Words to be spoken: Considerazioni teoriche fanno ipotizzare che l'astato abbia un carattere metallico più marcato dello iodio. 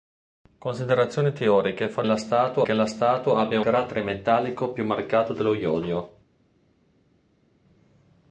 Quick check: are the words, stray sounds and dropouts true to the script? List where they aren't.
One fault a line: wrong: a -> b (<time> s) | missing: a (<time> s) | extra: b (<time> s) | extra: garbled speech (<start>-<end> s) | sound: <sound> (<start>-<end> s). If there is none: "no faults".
wrong: ipotizzare -> l'astato (2.0 s)
missing: un (3.6 s)